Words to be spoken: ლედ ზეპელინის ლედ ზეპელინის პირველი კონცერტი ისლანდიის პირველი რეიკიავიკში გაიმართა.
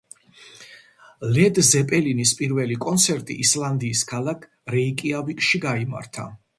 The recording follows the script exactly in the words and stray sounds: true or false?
false